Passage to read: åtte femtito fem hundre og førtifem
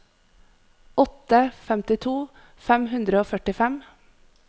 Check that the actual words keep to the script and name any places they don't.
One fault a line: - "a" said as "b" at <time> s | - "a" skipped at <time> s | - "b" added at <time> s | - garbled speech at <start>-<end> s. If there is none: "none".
none